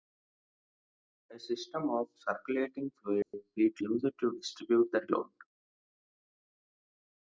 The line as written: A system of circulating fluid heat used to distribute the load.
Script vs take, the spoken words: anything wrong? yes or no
no